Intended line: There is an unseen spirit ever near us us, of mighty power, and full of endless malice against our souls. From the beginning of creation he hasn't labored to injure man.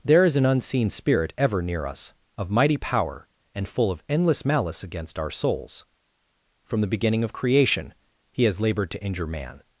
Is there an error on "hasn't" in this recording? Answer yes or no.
yes